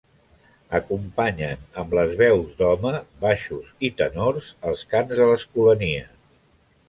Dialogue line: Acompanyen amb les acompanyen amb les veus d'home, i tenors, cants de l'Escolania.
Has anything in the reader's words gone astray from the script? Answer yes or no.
yes